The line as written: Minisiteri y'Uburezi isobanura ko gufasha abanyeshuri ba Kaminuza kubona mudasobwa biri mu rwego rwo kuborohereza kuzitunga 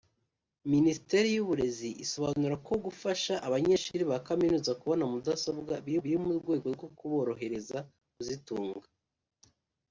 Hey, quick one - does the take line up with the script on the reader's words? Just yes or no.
no